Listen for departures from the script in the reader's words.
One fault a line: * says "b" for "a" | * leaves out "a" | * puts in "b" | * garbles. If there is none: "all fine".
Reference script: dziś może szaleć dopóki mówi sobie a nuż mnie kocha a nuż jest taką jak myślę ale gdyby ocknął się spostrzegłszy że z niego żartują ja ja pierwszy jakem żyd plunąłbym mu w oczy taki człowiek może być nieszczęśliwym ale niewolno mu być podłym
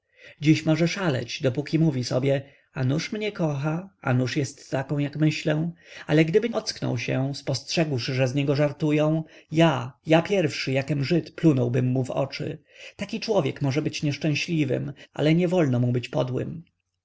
all fine